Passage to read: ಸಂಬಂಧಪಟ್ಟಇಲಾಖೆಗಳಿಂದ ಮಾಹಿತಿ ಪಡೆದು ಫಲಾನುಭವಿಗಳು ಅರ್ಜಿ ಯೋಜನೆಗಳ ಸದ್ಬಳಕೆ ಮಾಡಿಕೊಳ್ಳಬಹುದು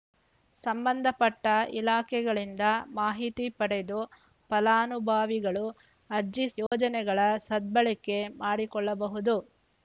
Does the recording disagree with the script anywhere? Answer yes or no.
no